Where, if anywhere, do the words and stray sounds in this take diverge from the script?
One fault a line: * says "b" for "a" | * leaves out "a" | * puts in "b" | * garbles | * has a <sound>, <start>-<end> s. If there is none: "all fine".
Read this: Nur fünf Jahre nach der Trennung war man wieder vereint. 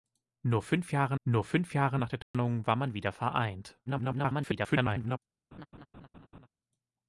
* puts in "nur fünf Jahre"
* has a dropout, 2.2-2.3 s
* garbles
* has a laugh, 5.5-6.5 s